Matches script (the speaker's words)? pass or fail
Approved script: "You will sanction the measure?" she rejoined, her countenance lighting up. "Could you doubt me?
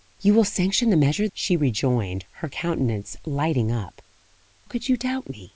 pass